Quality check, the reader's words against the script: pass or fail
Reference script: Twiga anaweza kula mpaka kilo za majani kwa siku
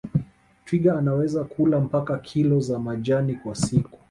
pass